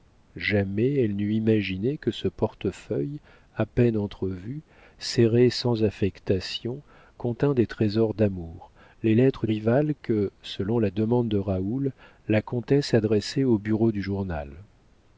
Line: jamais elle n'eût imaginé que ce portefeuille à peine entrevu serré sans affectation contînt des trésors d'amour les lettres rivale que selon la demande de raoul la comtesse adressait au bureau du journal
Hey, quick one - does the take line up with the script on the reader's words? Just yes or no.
yes